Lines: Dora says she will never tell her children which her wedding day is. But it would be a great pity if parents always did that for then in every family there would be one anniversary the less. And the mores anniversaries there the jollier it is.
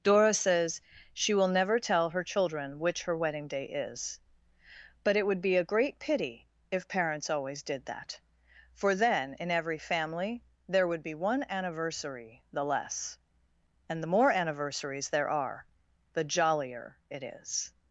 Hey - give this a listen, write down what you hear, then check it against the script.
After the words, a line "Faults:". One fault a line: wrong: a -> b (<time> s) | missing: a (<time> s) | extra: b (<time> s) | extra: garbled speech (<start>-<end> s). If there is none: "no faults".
Dora says she will never tell her children which her wedding day is. But it would be a great pity if parents always did that for then in every family there would be one anniversary the less. And the more anniversaries there are, the jollier it is.
Faults:
wrong: mores -> more (14.1 s)
extra: are (15.3 s)